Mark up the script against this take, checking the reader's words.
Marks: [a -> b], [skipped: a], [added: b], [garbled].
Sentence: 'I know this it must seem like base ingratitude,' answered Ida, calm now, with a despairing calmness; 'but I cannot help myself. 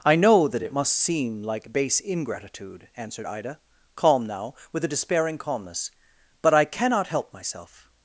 'I know [this -> that] it must seem like base ingratitude,' answered Ida, calm now, with a despairing calmness; 'but I cannot help myself.